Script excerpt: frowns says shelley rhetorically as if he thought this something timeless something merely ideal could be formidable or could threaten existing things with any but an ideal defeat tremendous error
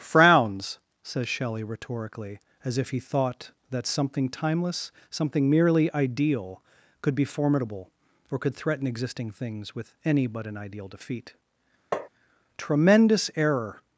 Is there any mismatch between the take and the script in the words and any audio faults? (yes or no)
yes